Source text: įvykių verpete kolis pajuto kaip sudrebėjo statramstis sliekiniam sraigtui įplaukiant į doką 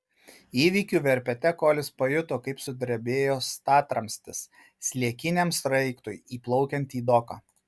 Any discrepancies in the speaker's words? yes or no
no